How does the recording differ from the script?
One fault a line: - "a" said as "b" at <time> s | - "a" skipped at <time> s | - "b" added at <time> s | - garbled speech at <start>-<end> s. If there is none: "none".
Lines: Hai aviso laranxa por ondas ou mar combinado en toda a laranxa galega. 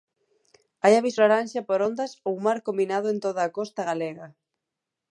- "laranxa" said as "costa" at 3.6 s